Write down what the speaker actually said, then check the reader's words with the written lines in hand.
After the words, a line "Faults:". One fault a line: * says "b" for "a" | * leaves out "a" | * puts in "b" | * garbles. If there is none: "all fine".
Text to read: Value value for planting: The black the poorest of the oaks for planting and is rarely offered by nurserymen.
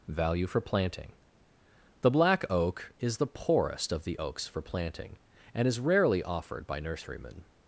Value for planting: The black oak is the poorest of the oaks for planting and is rarely offered by nurserymen.
Faults:
* leaves out "value"
* puts in "oak is"